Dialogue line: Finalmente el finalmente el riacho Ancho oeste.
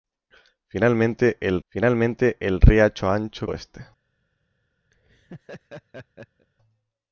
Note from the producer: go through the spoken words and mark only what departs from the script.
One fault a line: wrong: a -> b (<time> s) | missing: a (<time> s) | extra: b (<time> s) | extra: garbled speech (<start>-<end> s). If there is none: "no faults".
no faults